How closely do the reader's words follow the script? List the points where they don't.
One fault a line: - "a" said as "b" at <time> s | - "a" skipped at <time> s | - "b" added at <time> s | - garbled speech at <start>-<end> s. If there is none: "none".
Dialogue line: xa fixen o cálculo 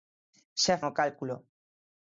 - "fixen" skipped at 0.8 s